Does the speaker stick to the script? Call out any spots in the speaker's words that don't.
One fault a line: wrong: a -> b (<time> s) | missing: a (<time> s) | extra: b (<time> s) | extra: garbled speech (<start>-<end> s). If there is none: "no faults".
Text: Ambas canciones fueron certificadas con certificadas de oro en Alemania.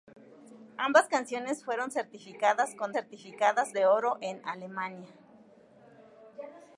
no faults